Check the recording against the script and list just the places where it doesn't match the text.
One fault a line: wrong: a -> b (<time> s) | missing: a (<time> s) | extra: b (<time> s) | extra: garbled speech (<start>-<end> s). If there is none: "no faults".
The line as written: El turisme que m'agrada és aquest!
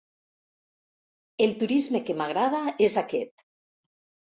no faults